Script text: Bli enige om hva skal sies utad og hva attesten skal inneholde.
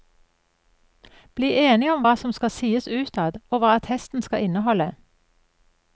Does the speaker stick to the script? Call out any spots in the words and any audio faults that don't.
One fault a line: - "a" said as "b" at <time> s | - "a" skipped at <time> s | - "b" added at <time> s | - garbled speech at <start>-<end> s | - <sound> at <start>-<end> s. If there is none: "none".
- "som" added at 2.2 s